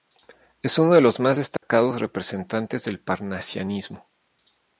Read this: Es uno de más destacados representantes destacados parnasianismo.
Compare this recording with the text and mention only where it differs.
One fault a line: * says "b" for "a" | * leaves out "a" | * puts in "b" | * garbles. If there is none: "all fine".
* puts in "los"
* says "del" for "destacados"